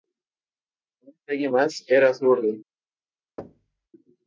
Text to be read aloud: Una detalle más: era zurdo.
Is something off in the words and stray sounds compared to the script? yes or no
yes